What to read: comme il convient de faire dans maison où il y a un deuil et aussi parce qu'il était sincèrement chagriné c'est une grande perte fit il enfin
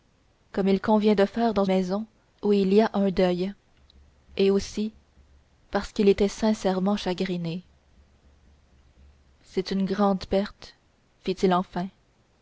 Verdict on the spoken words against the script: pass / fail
pass